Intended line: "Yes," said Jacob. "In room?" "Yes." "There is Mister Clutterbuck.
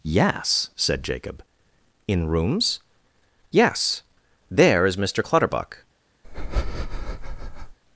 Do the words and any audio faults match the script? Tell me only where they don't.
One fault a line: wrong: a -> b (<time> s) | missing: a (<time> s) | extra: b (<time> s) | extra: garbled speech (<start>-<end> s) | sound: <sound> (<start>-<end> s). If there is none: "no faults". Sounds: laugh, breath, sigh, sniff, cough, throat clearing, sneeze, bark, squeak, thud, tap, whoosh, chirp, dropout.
wrong: room -> rooms (2.3 s)
sound: breath (6.2-7.8 s)